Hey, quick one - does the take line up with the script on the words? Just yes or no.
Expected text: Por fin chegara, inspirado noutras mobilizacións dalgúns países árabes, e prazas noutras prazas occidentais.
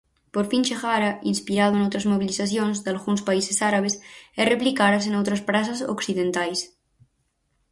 no